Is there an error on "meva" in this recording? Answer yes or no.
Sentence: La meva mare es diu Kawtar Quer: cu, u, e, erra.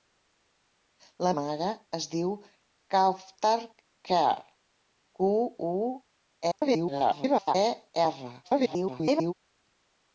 yes